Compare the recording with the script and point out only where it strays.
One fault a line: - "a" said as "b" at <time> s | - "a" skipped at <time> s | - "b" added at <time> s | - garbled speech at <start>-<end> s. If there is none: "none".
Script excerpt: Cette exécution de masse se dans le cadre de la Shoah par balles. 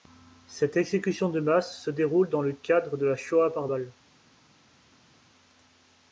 - "déroule" added at 1.9 s